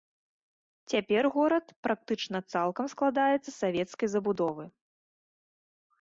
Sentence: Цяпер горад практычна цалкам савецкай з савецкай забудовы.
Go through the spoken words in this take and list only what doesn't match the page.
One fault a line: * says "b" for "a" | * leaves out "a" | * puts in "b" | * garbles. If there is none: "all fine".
* says "складаецца" for "савецкай"